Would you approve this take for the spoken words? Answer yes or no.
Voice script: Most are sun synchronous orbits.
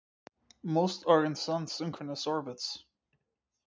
no